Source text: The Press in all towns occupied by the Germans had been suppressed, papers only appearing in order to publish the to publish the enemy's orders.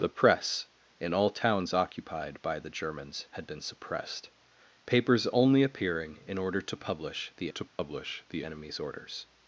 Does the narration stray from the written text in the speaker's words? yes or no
no